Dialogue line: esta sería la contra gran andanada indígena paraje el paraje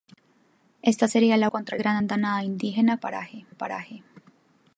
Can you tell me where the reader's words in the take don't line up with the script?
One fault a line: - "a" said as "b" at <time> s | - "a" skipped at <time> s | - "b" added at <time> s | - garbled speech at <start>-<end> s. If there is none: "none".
none